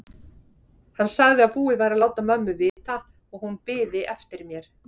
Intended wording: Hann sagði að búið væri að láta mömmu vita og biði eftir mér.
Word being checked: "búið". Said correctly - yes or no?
yes